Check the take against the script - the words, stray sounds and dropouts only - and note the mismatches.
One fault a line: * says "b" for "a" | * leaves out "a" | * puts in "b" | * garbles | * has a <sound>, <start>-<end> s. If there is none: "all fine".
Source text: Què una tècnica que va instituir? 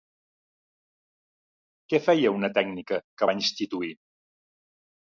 * puts in "feia"